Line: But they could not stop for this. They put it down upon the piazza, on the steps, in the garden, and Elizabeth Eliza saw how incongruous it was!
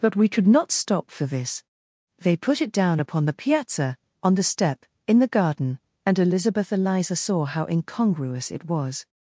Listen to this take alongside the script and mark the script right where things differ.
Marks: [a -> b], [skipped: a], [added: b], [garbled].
But [they -> we] could not stop for this. They put it down upon the piazza, on the [steps, -> step] in the garden, and Elizabeth Eliza saw how incongruous it was!